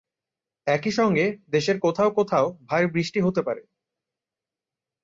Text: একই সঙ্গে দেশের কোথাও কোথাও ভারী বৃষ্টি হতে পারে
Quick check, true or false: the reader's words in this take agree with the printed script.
true